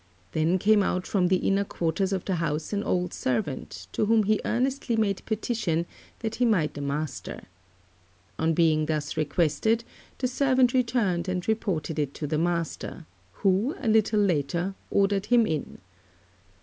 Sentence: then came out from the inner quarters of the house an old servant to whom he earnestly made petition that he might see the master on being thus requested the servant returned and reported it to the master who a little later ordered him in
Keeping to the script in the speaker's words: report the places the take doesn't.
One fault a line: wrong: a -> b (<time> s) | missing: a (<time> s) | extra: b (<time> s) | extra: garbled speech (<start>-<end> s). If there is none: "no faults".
missing: see (6.8 s)